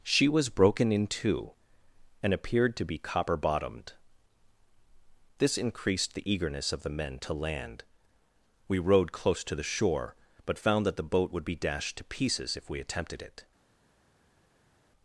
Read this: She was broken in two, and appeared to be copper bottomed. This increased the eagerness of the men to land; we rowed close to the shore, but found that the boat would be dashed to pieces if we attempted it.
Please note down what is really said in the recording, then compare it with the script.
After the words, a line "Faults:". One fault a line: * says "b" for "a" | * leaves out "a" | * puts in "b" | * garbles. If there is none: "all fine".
She was broken in two, and appeared to be copper bottomed. This increased the eagerness of the men to land; we rowed close to the shore, but found that the boat would be dashed to pieces if we attempted it.
Faults:
all fine